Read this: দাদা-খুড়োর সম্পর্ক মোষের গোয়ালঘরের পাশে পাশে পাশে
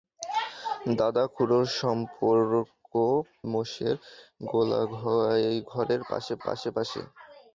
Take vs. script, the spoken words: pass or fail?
pass